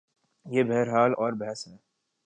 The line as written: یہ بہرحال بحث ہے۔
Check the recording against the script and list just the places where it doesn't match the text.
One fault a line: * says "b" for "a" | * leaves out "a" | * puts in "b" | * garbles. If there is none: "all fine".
* puts in "اور"